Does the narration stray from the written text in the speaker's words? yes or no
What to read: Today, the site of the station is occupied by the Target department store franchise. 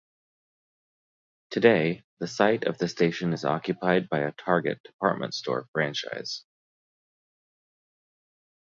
yes